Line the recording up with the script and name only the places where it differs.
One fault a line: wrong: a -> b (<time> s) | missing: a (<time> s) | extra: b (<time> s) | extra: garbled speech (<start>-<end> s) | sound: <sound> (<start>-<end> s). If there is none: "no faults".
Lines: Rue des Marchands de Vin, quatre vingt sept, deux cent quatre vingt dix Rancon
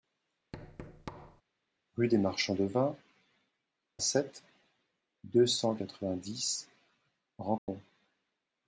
sound: thud (0.5-1.4 s)
missing: quatre vingt (2.9 s)
sound: dropout (7.6-7.7 s)